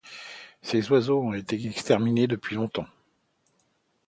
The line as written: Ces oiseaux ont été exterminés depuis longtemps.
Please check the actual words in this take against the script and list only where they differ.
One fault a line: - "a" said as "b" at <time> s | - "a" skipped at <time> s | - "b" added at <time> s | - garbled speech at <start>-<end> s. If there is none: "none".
none